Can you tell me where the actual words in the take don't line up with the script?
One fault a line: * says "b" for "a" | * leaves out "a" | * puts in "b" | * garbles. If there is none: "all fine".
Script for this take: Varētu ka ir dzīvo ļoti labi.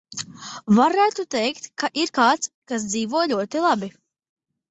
* puts in "teikt"
* puts in "kāds kas"